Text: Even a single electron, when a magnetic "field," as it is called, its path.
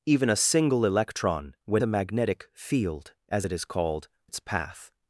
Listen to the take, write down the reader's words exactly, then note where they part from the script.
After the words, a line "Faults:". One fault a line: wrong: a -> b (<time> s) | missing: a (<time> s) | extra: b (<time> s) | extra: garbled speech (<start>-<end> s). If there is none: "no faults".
Even a single electron, when a magnetic "field," as it is called, its path.
Faults:
no faults